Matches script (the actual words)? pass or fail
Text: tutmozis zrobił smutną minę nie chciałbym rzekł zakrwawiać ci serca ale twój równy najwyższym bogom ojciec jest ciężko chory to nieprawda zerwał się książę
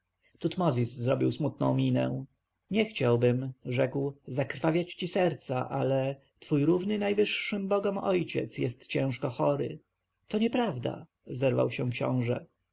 pass